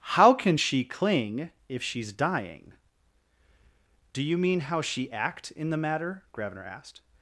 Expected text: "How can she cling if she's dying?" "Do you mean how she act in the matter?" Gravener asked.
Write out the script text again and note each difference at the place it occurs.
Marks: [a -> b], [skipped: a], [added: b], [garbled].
"How can she cling if she's dying?" "Do you mean how she act in the matter?" Gravener asked.